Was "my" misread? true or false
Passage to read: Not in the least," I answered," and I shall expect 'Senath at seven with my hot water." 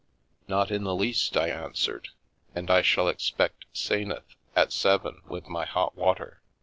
false